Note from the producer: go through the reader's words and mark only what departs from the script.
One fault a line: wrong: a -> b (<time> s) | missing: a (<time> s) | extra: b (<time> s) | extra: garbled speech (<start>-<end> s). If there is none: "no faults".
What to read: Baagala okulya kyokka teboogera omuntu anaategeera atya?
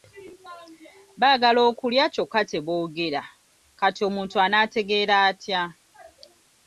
extra: kati (3.8 s)